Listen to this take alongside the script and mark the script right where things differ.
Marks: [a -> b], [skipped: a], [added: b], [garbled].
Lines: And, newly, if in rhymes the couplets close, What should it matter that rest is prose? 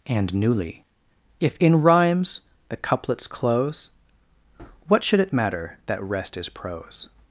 And, newly, if in rhymes the couplets close, What should it matter that rest is prose?